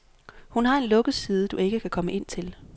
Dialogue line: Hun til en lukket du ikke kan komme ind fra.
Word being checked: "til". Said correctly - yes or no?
no